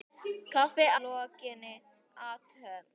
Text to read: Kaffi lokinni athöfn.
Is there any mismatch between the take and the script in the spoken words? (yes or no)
no